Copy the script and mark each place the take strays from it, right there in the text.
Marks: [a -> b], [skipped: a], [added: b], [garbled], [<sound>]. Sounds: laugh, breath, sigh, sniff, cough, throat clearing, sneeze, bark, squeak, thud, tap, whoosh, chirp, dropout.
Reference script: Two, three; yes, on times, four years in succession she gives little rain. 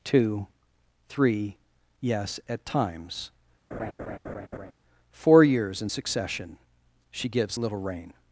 Two, three; yes, [on -> at] times, [laugh] four years in succession she gives little rain.